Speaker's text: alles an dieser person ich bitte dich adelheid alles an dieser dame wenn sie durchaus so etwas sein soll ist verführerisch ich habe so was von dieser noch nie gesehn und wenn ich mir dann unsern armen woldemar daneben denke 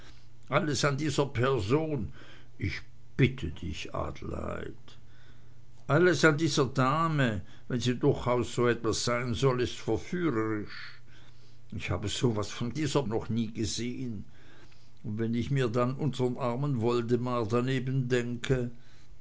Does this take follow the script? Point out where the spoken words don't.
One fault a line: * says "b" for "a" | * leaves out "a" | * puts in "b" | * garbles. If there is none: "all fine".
all fine